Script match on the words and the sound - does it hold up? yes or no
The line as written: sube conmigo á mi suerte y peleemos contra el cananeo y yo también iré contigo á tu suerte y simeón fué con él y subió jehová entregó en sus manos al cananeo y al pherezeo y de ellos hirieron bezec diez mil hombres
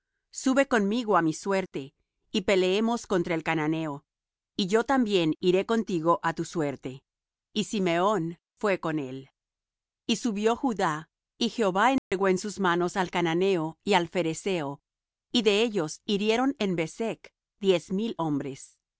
no